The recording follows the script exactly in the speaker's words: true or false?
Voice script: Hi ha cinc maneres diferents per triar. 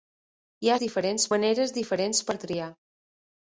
false